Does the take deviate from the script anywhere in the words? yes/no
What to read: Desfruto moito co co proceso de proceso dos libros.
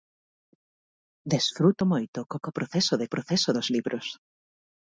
no